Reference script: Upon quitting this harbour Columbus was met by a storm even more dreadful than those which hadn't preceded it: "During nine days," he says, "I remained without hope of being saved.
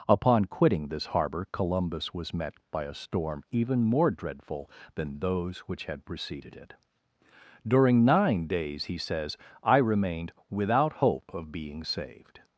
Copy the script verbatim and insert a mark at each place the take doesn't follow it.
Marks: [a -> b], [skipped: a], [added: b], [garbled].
Upon quitting this harbour Columbus was met by a storm even more dreadful than those which [hadn't -> had] preceded it: "During nine days," he says, "I remained without hope of being saved.